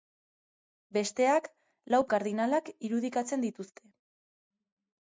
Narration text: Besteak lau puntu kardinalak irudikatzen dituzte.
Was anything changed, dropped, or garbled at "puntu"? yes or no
yes